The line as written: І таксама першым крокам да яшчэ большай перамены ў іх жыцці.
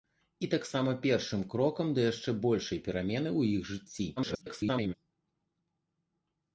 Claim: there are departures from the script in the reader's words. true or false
true